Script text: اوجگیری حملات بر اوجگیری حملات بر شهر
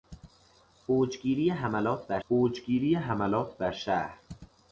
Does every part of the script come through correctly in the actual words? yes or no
yes